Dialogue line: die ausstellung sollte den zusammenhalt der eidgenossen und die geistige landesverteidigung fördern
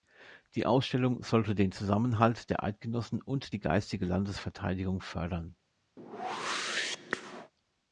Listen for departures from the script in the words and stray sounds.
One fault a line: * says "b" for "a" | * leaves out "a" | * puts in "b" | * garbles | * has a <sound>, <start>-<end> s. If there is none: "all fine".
* has a whoosh, 6.0-7.5 s